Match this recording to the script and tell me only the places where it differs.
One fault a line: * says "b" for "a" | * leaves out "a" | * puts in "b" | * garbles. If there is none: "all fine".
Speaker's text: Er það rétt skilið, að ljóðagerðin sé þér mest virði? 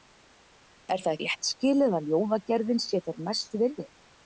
all fine